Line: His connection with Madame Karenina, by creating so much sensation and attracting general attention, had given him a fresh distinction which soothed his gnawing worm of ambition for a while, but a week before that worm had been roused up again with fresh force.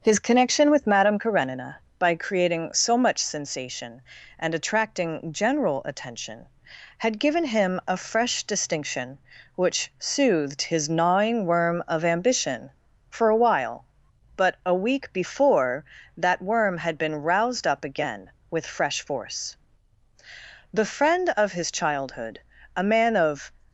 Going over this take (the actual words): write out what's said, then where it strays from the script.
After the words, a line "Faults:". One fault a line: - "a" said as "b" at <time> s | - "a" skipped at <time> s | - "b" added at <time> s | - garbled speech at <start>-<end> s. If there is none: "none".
His connection with Madame Karenina, by creating so much sensation and attracting general attention, had given him a fresh distinction which soothed his gnawing worm of ambition for a while, but a week before that worm had been roused up again with fresh force. The friend of his childhood, a man of
Faults:
- "The friend of his childhood a man of" added at 20.7 s